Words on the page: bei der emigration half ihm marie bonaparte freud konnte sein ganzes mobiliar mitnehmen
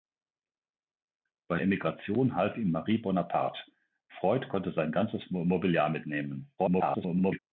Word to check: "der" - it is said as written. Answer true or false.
false